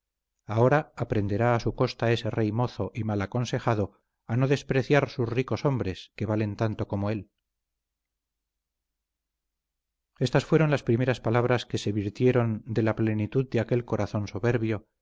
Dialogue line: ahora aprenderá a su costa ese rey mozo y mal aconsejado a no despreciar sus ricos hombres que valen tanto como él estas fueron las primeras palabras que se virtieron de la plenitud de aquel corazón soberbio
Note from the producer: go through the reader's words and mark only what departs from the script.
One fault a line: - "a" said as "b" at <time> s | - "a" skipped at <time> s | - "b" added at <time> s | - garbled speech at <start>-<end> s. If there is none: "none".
none